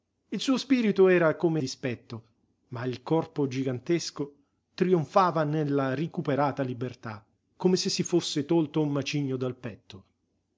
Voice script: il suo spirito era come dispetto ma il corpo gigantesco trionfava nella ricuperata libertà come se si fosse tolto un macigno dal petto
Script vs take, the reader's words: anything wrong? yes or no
no